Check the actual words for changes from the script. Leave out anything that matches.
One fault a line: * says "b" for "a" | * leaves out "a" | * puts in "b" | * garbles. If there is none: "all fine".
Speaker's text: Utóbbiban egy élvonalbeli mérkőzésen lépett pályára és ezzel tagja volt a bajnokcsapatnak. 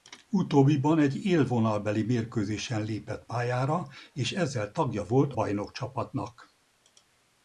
* leaves out "a"